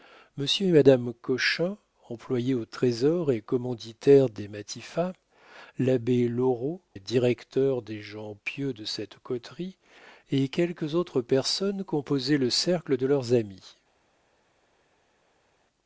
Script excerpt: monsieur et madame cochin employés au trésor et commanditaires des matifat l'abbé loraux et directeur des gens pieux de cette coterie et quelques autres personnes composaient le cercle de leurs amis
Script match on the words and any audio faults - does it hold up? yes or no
yes